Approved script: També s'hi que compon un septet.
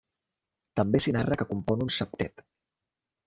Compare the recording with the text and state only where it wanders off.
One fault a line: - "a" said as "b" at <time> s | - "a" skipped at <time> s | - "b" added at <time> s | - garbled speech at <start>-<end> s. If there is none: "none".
- "narra" added at 1.2 s